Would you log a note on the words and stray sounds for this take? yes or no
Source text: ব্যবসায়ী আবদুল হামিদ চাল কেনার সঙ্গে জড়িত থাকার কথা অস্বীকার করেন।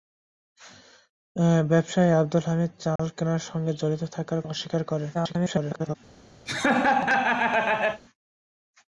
yes